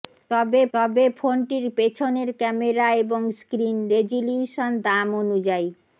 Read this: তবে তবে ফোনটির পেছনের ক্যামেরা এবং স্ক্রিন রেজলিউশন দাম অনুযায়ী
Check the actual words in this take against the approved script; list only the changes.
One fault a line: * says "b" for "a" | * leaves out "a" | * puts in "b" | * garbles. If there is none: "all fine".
all fine